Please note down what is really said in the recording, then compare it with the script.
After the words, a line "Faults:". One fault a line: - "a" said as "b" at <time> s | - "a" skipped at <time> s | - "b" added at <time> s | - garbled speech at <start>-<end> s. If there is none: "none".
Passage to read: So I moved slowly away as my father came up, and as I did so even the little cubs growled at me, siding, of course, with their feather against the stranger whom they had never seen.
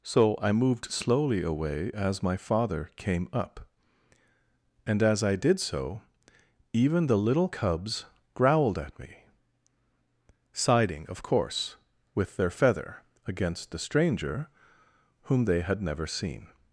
So I moved slowly away as my father came up, and as I did so even the little cubs growled at me, siding, of course, with their feather against the stranger whom they had never seen.
Faults:
none